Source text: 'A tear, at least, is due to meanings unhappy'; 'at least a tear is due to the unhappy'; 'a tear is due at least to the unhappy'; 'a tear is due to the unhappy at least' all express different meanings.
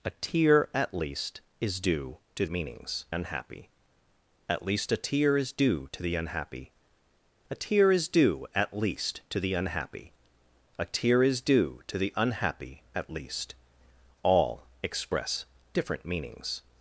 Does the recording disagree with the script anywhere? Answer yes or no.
no